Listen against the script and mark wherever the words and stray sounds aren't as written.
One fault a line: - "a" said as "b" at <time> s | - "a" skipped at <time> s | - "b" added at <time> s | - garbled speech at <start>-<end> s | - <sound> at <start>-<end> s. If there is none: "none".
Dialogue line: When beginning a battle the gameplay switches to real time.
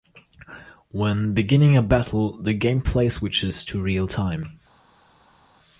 none